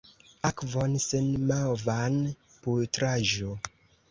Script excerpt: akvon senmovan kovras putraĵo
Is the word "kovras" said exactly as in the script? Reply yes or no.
no